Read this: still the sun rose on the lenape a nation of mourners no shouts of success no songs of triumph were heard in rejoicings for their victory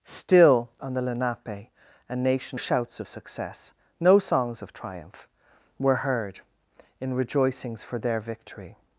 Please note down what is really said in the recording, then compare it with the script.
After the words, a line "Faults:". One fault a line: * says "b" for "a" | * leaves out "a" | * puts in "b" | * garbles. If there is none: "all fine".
still on the lenape a nation shouts of success no songs of triumph were heard in rejoicings for their victory
Faults:
* leaves out "the sun rose"
* leaves out "of mourners no"